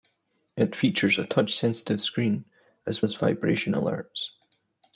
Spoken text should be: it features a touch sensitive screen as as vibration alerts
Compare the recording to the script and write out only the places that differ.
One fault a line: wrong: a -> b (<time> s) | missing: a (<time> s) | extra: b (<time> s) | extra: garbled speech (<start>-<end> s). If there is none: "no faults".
no faults